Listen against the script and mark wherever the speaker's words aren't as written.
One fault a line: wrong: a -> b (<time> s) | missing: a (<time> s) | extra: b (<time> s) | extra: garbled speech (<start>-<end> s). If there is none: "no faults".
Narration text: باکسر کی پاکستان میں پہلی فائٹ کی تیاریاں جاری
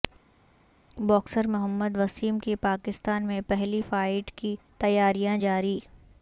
extra: محمد وسیم (1.5 s)